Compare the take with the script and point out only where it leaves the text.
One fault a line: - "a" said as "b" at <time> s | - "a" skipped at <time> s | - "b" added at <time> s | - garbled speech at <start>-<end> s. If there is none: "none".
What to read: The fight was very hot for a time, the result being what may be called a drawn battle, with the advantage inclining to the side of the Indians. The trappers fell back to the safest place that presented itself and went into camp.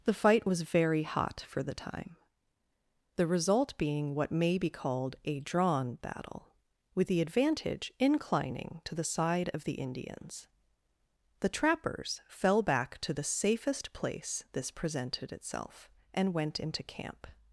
- "a" said as "the" at 1.6 s
- "that" said as "this" at 14.5 s